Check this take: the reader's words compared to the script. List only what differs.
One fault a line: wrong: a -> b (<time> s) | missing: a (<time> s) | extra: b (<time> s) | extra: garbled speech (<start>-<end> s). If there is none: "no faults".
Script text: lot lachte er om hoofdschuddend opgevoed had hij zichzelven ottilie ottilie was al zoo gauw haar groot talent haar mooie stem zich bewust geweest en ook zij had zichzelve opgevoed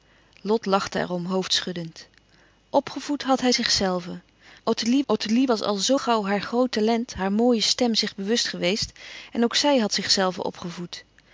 no faults